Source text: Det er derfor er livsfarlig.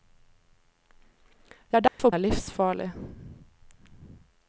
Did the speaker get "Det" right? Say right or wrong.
right